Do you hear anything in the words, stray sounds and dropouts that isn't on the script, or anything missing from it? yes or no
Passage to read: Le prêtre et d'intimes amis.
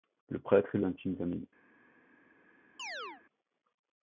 yes